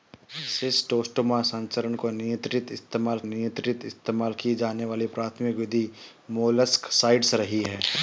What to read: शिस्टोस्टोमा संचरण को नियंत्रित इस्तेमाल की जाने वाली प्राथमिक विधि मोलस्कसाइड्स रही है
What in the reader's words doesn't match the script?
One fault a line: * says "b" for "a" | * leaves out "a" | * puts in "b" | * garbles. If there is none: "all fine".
* puts in "नियंत्रित इस्तेमाल"